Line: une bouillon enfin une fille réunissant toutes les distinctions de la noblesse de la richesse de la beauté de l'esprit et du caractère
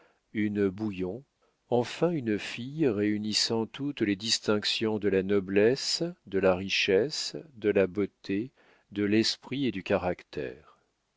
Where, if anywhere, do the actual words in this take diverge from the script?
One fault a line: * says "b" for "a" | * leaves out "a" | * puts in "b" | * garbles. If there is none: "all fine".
all fine